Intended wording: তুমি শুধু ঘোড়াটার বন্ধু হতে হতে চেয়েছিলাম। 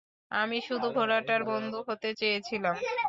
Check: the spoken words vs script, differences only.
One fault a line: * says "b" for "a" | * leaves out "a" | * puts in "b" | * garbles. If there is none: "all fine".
* says "আমি" for "তুমি"
* leaves out "হতে"